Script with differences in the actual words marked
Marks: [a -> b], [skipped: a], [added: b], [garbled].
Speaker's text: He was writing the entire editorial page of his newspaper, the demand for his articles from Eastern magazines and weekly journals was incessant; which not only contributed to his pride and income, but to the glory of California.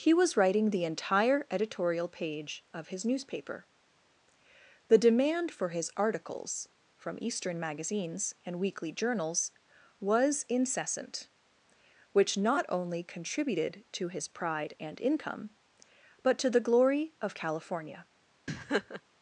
He was writing the entire editorial page of his newspaper, the demand for his articles from Eastern magazines and weekly journals was incessant; which not only contributed to his pride and income, but to the glory of California.